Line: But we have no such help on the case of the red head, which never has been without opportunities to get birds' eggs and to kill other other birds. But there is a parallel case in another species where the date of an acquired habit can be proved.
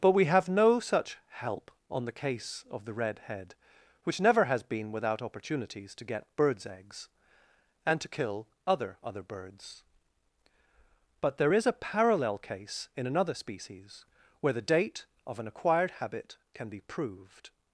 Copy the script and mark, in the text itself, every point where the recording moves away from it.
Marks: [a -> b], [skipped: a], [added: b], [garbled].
But we have no such help on the case of the red head, which never has been without opportunities to get birds' eggs and to kill other other birds. But there is a parallel case in another species where the date of an acquired habit can be proved.